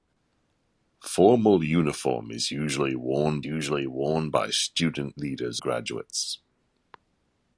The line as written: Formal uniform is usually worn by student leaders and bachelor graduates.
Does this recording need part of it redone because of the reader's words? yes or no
yes